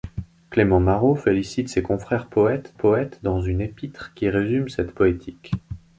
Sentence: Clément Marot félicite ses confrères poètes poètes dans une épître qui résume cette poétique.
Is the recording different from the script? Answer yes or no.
no